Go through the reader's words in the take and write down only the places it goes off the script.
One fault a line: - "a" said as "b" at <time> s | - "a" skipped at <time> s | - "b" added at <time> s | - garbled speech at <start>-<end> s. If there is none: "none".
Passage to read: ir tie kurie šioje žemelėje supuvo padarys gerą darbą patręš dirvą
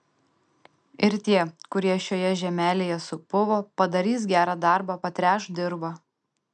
none